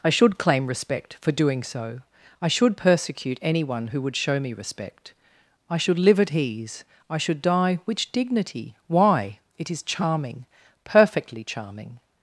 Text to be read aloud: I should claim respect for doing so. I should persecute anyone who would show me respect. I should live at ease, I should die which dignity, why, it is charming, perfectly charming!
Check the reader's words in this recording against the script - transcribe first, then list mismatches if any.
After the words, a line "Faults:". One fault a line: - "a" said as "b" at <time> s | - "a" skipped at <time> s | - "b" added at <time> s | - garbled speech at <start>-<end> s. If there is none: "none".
I should claim respect for doing so. I should persecute anyone who would show me respect. I should live at ease, I should die which dignity, why, it is charming, perfectly charming!
Faults:
none